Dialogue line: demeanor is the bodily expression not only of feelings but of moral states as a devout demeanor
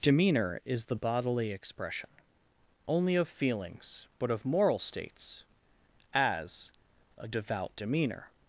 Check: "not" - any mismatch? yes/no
yes